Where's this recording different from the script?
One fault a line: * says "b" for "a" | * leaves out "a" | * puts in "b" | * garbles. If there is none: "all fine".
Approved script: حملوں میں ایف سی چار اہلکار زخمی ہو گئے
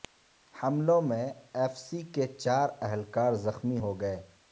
* puts in "کے"